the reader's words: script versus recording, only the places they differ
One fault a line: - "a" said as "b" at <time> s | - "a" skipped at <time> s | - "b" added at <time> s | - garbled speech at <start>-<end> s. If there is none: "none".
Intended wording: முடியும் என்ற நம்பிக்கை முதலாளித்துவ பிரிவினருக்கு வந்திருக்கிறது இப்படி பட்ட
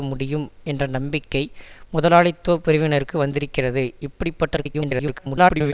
- garbled speech at 4.6-5.7 s